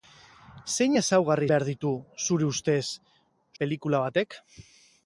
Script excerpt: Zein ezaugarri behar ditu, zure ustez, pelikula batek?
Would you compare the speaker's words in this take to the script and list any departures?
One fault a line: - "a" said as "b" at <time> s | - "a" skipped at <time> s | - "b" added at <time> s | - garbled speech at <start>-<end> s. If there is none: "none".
none